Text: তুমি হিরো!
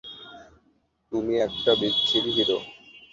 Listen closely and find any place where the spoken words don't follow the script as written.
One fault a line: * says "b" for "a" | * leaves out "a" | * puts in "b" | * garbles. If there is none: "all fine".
* puts in "একটা বিচ্ছিরি"